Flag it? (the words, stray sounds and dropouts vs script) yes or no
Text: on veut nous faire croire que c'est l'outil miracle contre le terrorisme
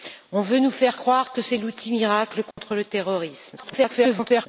yes